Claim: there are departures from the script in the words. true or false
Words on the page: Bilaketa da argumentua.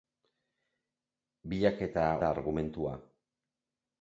false